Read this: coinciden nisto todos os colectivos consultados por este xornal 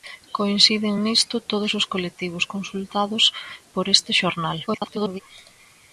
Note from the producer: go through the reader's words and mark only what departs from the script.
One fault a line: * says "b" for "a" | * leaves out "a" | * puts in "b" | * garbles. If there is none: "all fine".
* garbles